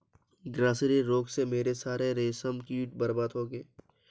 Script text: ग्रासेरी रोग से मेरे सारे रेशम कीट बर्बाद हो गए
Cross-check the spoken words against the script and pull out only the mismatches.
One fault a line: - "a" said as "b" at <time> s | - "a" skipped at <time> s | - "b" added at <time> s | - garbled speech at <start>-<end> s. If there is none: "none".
none